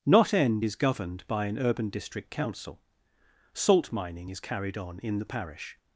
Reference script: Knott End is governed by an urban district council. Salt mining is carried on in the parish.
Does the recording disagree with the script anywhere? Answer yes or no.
no